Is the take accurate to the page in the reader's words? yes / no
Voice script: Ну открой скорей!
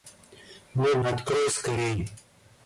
yes